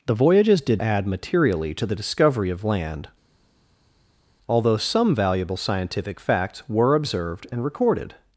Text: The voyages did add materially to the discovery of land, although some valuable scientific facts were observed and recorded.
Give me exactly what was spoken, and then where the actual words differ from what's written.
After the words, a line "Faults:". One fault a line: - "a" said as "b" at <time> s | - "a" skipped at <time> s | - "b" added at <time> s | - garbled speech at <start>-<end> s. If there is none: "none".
The voyages did add materially to the discovery of land, although some valuable scientific facts were observed and recorded.
Faults:
none